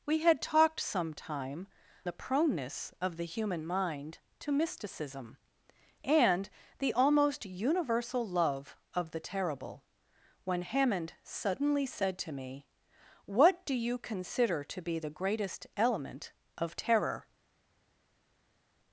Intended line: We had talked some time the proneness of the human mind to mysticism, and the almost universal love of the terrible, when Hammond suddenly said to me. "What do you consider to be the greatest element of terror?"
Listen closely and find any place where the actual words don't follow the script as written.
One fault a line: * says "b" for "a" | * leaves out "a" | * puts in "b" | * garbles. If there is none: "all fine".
all fine